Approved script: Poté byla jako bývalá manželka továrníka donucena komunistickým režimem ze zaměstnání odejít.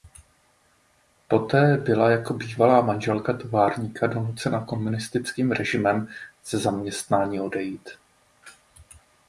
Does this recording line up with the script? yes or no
yes